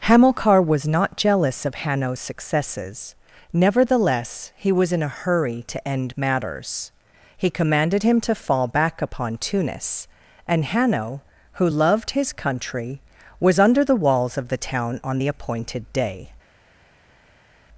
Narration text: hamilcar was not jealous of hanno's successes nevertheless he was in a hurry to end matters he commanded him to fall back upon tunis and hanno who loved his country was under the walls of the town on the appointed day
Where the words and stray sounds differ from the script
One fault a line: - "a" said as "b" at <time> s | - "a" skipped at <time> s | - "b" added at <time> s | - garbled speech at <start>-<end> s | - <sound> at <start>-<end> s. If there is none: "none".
none